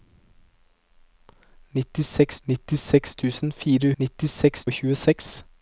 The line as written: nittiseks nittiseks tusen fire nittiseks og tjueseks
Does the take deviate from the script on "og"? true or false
false